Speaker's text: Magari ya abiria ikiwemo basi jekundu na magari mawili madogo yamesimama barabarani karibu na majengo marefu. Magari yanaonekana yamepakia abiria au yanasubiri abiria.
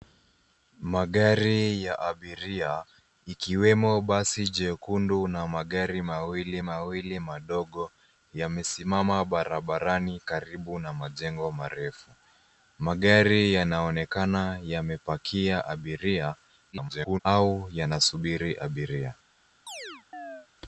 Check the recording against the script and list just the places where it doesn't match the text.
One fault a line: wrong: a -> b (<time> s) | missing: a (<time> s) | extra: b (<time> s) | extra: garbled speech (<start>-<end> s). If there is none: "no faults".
extra: mawili (6.6 s)
extra: garbled speech (16.7-17.2 s)